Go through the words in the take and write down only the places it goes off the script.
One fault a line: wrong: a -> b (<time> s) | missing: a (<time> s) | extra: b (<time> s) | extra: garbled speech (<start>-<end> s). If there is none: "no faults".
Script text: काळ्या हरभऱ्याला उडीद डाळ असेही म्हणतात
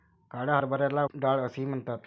missing: उडीद (1.0 s)